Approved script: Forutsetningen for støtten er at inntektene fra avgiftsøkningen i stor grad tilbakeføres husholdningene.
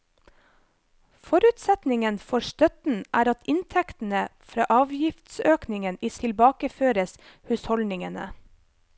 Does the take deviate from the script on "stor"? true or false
true